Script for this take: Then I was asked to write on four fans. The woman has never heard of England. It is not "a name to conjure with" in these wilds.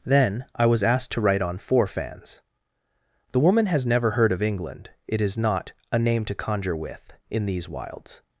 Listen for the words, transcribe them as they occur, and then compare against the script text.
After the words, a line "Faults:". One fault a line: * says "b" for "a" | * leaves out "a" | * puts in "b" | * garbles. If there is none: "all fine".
Then I was asked to write on four fans. The woman has never heard of England. It is not "a name to conjure with" in these wilds.
Faults:
all fine